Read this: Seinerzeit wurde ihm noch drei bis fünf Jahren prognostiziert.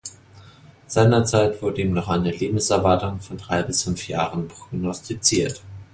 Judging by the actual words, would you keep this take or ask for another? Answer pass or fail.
fail